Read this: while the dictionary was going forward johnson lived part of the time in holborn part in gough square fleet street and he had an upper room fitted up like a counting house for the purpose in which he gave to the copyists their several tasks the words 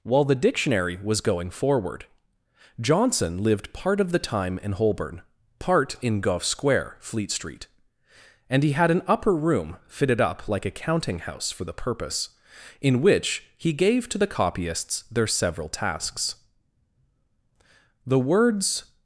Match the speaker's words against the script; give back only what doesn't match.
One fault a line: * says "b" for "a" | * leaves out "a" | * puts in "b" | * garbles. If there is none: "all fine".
all fine